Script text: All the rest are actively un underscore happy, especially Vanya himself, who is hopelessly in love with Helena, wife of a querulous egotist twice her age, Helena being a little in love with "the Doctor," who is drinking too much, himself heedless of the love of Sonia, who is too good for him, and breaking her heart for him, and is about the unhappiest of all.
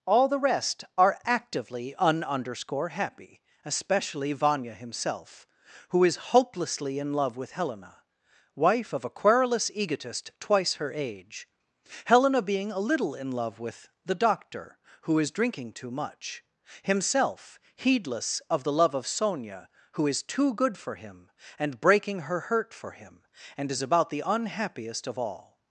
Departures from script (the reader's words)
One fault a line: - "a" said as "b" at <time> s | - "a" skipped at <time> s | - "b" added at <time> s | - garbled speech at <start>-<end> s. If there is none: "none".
- "heart" said as "hurt" at 22.4 s